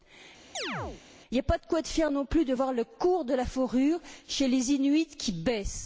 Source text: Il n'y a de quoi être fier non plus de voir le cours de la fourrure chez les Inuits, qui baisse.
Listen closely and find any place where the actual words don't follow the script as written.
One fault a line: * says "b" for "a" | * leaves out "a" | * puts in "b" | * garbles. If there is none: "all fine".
* puts in "pas"